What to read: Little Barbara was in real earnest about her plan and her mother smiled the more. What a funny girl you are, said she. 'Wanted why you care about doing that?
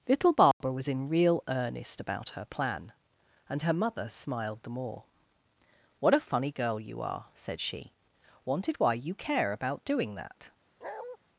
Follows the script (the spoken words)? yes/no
yes